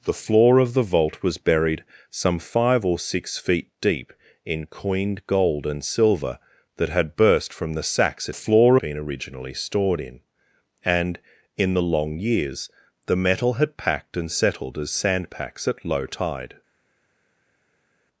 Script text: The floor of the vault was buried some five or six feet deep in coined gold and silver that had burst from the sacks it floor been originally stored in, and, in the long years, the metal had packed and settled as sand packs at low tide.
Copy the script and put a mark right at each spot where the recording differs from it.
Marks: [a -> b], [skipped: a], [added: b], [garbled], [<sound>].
The floor of the vault was buried some five or six feet deep in coined gold and silver that had burst from the sacks it floor been originally stored in, and, in the long years, the metal had packed and settled as sand packs at low tide.